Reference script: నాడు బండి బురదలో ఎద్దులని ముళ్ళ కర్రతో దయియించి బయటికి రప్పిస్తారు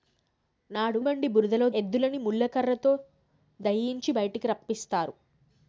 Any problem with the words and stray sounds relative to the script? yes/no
no